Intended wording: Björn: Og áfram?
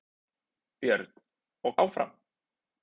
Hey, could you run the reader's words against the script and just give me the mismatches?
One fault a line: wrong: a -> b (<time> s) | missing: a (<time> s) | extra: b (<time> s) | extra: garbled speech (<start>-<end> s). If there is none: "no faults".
no faults